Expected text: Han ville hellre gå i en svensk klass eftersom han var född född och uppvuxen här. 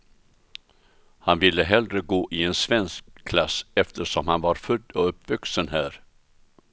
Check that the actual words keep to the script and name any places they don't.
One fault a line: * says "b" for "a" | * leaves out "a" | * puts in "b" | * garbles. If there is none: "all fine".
* leaves out "född"